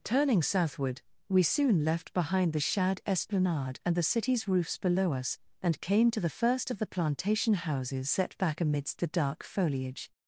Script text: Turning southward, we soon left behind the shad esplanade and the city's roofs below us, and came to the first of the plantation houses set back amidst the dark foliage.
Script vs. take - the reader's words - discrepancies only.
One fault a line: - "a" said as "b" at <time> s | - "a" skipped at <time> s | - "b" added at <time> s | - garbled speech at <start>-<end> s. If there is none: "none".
none